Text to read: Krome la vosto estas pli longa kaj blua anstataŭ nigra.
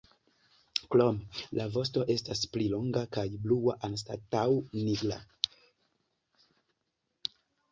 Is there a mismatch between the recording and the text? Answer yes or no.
no